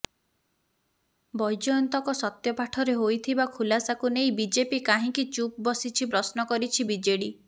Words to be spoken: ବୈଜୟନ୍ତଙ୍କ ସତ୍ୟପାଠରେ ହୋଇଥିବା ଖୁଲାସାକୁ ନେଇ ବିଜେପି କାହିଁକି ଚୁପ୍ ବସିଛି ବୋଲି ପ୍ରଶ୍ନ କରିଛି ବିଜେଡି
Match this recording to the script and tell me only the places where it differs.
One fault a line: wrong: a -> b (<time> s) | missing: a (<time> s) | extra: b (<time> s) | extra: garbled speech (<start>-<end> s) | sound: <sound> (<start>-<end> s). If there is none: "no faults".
missing: ବୋଲି (6.1 s)